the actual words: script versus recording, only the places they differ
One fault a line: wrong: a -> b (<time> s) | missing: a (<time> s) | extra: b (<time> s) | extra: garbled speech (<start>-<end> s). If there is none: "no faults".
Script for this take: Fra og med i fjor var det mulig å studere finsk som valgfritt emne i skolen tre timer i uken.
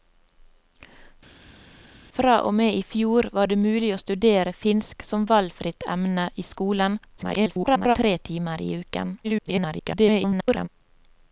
extra: garbled speech (7.2-8.0 s)
extra: garbled speech (9.2-10.7 s)